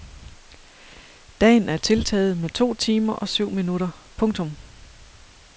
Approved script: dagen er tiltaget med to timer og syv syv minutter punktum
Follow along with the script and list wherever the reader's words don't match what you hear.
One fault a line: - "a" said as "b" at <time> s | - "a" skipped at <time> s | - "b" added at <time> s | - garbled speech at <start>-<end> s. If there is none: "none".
- "syv" skipped at 3.5 s